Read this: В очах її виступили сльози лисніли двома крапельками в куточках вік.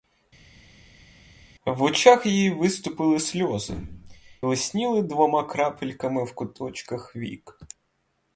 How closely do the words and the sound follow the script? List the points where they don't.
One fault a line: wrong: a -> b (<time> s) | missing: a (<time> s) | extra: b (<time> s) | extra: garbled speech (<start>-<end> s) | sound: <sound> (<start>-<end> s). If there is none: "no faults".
no faults